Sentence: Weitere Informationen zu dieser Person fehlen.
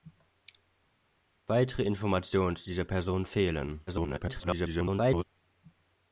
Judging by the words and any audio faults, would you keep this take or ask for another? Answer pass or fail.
fail